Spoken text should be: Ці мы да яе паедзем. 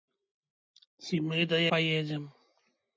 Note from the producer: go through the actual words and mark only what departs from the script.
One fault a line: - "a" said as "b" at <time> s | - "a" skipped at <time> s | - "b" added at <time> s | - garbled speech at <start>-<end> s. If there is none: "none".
- "яе" skipped at 1.6 s